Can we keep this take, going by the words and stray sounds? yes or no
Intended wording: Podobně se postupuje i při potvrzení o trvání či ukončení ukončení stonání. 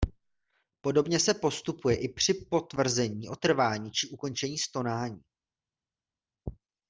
no